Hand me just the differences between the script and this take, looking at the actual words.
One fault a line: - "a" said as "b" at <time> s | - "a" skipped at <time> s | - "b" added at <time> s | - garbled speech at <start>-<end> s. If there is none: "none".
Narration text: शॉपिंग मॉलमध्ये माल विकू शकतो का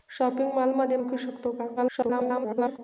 - "माल" skipped at 1.0 s
- garbled speech at 1.8-2.8 s